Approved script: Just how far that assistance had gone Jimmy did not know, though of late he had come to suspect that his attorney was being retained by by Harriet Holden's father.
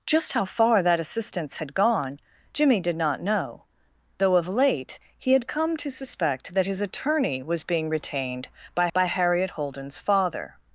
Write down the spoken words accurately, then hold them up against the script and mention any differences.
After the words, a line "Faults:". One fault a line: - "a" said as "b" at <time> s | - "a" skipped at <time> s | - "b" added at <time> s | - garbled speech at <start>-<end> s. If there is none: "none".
Just how far that assistance had gone Jimmy did not know, though of late he had come to suspect that his attorney was being retained by by Harriet Holden's father.
Faults:
none